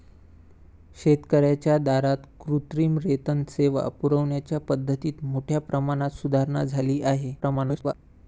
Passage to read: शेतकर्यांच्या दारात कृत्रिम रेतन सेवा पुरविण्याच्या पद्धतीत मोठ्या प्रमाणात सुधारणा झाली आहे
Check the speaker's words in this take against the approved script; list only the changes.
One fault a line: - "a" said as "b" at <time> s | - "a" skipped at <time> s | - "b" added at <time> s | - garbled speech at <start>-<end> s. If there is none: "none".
- garbled speech at 7.4-7.9 s